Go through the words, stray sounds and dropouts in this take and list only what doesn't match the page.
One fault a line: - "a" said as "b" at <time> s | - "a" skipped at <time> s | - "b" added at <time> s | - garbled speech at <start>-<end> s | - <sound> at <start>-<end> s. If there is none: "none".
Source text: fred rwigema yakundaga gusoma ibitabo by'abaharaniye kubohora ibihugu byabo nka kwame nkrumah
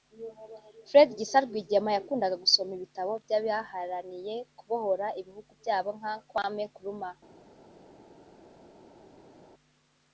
- "gisa" added at 1.2 s